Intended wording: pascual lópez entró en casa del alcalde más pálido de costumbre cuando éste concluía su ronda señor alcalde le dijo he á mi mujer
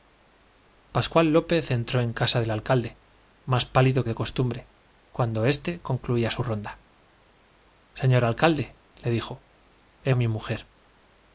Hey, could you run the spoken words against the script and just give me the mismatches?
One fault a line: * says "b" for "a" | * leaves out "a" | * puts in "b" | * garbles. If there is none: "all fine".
all fine